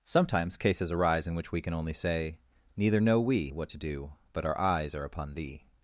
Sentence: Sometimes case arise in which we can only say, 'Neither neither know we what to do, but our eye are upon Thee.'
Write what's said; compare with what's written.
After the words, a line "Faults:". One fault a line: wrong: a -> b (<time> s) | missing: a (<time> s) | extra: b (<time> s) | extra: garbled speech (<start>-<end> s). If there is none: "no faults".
Sometimes cases arise in which we can only say, 'Neither know we what to do, but our eyes are upon Thee.'
Faults:
wrong: case -> cases (0.6 s)
missing: neither (3.0 s)
wrong: eye -> eyes (4.6 s)